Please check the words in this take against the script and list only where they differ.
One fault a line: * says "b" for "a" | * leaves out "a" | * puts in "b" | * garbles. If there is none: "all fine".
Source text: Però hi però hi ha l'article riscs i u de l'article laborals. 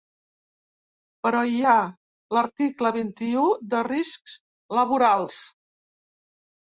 * leaves out "però hi"
* says "vint" for "riscs"
* says "riscs" for "l'article"